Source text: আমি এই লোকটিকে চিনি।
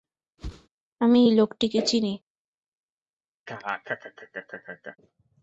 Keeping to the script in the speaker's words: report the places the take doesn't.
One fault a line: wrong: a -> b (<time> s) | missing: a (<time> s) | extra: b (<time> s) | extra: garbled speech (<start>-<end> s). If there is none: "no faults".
no faults